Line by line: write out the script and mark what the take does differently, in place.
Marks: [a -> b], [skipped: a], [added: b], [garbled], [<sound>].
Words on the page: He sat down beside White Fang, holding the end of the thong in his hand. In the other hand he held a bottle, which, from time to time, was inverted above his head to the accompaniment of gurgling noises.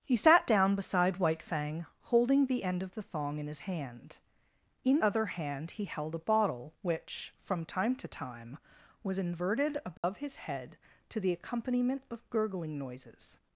He sat down beside White Fang, holding the end of the thong in his hand. In [skipped: the] other hand he held a bottle, which, from time to time, was inverted above [dropout] his head to the accompaniment of gurgling noises.